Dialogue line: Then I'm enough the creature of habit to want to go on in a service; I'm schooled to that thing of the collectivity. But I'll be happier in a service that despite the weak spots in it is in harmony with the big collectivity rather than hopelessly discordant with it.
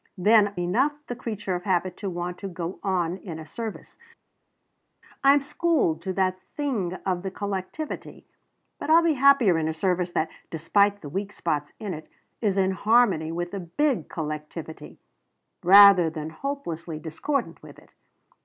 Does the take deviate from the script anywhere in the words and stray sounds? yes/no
yes